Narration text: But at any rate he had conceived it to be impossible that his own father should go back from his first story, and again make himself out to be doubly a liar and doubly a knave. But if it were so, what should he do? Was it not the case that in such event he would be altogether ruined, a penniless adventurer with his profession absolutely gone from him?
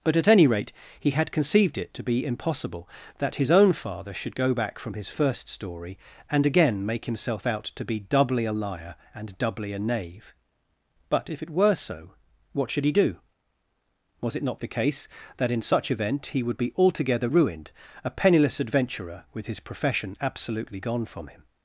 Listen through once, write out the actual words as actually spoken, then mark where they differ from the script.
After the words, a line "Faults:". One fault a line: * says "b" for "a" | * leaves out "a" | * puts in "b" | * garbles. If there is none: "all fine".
But at any rate he had conceived it to be impossible that his own father should go back from his first story, and again make himself out to be doubly a liar and doubly a knave. But if it were so, what should he do? Was it not the case that in such event he would be altogether ruined, a penniless adventurer with his profession absolutely gone from him?
Faults:
all fine